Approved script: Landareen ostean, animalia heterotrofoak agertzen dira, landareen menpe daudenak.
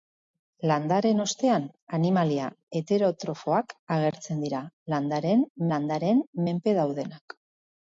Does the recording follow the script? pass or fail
fail